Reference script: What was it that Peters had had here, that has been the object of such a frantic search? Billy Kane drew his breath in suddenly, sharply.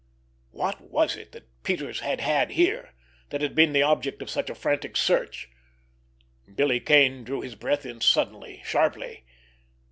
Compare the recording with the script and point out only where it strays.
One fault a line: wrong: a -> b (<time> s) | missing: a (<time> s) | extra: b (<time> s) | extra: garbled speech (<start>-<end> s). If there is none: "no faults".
wrong: has -> had (3.4 s)